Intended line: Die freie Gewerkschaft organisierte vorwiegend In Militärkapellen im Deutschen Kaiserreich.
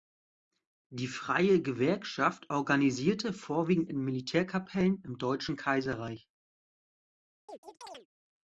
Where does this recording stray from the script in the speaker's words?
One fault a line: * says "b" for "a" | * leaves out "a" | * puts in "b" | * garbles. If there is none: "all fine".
all fine